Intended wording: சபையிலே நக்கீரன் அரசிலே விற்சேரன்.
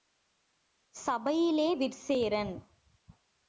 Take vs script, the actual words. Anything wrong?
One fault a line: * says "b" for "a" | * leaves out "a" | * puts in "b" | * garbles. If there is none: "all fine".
* leaves out "நக்கீரன் அரசிலே"